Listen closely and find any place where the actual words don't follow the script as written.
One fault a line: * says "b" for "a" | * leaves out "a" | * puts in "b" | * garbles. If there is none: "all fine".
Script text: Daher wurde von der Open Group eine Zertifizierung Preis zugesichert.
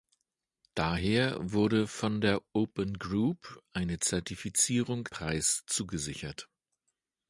all fine